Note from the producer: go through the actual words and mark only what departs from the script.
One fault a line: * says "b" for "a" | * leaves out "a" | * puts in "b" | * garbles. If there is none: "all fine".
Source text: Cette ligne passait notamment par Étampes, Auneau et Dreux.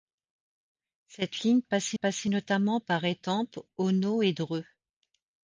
* puts in "passait"